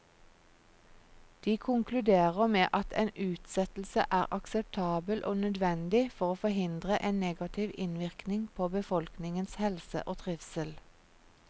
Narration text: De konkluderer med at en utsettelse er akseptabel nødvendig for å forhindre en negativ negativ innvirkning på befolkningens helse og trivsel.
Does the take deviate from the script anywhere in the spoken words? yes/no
yes